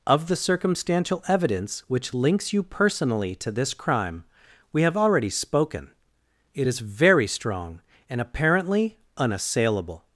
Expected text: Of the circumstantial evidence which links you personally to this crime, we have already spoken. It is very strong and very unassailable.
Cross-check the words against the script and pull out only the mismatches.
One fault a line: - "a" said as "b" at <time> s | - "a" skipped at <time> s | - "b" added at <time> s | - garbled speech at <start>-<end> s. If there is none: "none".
- "very" said as "apparently" at 8.2 s